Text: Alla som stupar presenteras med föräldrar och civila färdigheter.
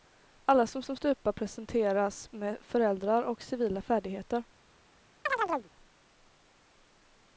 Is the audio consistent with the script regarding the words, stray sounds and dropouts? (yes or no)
no